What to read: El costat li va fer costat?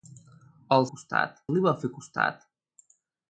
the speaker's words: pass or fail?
pass